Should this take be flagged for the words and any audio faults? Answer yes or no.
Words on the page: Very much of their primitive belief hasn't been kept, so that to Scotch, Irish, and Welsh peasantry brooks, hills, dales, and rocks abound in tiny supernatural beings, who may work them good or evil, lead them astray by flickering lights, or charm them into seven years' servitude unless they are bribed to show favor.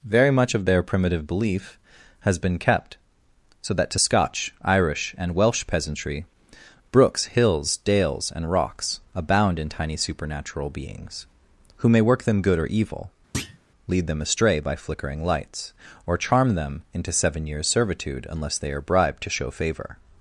yes